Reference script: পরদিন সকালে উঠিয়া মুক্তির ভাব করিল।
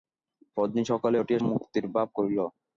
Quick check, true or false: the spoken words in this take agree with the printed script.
true